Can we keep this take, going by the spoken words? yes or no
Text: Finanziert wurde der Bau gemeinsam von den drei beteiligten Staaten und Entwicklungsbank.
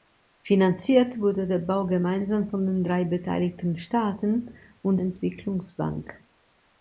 yes